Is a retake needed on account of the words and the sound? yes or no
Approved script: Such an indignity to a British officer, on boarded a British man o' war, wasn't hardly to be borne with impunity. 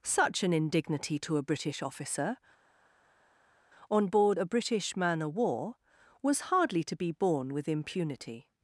yes